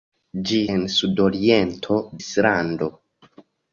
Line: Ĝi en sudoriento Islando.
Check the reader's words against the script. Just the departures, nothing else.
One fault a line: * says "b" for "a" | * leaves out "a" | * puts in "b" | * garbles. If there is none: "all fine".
all fine